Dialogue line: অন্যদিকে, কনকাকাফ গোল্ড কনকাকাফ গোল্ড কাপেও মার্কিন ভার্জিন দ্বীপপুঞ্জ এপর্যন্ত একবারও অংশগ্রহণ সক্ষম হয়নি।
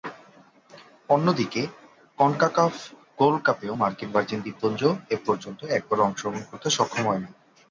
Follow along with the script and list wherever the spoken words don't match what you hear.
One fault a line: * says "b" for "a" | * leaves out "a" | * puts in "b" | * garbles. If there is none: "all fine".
* leaves out "কনকাকাফ গোল্ড"
* puts in "করতে"